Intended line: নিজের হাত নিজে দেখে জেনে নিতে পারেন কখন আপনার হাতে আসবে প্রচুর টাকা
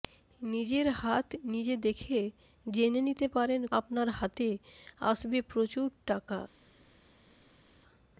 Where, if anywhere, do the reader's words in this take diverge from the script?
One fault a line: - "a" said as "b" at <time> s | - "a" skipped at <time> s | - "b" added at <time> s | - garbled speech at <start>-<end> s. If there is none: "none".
- "কখন" skipped at 3.6 s